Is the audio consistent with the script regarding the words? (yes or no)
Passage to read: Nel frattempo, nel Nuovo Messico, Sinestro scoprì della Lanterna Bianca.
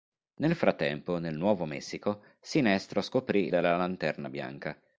yes